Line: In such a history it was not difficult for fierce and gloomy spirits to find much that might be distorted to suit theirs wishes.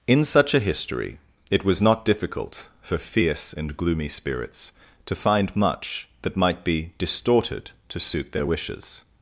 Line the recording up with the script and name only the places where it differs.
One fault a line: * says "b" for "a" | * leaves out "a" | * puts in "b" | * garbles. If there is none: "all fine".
* says "their" for "theirs"